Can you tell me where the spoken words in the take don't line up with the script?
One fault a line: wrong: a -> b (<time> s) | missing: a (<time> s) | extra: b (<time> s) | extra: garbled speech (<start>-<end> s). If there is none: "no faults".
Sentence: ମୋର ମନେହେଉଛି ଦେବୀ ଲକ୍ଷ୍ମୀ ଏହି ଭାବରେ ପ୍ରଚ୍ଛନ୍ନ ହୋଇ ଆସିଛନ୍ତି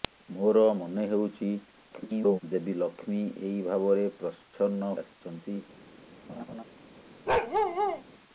extra: garbled speech (1.9-2.4 s)
missing: ହୋଇ (4.9 s)